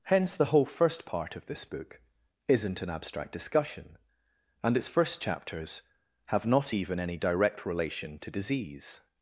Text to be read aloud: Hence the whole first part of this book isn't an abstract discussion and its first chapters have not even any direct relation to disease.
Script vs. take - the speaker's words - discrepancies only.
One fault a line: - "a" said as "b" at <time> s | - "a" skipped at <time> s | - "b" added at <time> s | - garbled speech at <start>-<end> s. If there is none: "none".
none